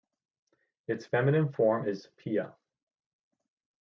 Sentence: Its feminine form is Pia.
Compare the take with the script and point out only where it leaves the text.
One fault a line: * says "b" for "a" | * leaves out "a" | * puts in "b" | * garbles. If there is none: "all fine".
all fine